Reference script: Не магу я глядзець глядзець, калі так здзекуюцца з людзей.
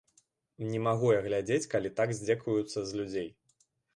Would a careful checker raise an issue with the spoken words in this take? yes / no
yes